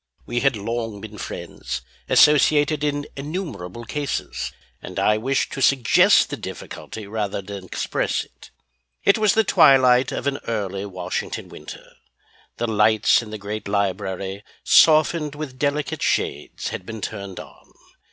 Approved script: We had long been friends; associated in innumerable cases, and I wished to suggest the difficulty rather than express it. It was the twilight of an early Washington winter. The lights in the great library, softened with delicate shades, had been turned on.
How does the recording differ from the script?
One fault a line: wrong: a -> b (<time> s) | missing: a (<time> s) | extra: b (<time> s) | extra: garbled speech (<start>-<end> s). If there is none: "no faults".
no faults